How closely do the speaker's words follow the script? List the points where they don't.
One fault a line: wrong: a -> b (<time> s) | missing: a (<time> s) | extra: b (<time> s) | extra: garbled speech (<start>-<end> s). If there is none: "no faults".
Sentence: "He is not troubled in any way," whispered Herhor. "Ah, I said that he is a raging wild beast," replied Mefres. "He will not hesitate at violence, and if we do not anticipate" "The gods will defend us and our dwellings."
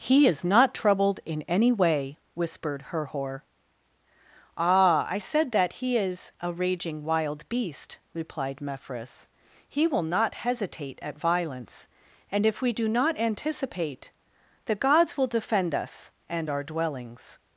no faults